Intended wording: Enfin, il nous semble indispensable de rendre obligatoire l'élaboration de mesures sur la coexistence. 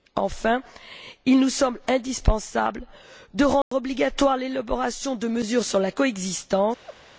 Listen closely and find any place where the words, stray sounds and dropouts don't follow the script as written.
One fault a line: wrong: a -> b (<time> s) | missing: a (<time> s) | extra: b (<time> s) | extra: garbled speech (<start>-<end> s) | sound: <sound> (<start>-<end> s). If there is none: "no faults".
sound: dropout (3.6-3.7 s)
sound: laugh (6.8-7.0 s)